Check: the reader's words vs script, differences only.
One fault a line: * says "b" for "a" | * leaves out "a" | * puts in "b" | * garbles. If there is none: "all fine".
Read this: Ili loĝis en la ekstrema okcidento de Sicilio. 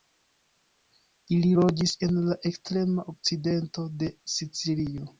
all fine